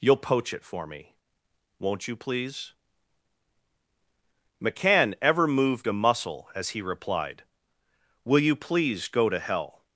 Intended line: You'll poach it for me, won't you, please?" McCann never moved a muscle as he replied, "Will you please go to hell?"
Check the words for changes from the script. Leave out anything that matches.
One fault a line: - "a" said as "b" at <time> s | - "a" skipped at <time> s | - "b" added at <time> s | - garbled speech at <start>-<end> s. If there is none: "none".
- "never" said as "ever" at 5.2 s